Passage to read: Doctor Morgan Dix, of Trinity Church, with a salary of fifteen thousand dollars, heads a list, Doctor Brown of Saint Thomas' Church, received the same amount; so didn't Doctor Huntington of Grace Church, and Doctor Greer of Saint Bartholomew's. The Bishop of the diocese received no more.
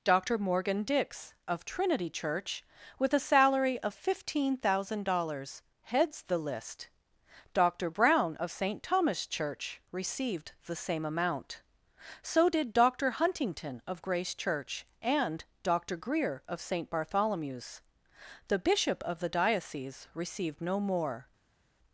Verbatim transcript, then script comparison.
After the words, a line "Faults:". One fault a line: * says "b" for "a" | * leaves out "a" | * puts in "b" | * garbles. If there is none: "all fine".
Doctor Morgan Dix, of Trinity Church, with a salary of fifteen thousand dollars, heads the list, Doctor Brown of Saint Thomas' Church, received the same amount; so did Doctor Huntington of Grace Church, and Doctor Greer of Saint Bartholomew's. The Bishop of the diocese received no more.
Faults:
* says "the" for "a"
* says "did" for "didn't"